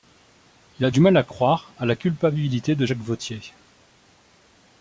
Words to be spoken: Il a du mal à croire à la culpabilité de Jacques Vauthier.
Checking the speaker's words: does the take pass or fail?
pass